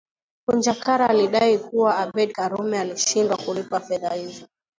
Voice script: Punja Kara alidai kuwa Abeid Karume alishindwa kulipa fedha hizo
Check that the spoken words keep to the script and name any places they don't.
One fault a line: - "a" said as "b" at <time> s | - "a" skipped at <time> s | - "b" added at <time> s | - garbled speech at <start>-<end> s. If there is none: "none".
none